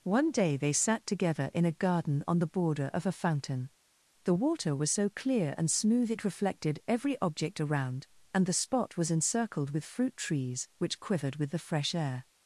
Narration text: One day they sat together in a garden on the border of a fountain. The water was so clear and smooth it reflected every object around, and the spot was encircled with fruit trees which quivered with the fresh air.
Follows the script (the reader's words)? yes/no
yes